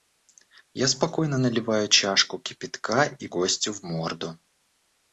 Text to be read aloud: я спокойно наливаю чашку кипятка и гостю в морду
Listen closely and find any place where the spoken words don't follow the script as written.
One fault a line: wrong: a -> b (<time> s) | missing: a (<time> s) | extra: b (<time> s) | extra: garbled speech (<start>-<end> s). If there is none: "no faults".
no faults